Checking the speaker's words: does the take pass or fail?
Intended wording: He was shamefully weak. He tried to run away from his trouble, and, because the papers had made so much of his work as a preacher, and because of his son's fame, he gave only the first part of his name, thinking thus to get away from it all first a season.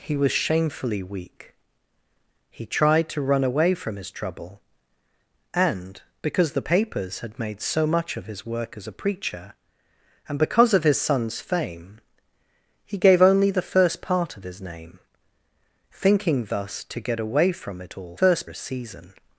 pass